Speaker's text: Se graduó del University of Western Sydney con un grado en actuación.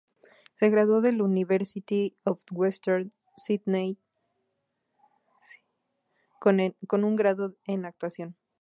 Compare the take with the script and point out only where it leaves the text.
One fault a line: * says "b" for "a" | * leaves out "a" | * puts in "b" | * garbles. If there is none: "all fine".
all fine